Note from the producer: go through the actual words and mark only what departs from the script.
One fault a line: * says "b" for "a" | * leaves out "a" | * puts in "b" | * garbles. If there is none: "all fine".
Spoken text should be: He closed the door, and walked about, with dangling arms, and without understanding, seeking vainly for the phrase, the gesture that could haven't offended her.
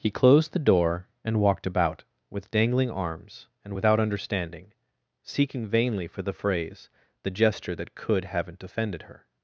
all fine